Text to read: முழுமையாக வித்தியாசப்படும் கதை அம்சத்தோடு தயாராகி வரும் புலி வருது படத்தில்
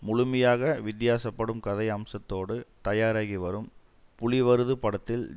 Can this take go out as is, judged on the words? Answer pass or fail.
pass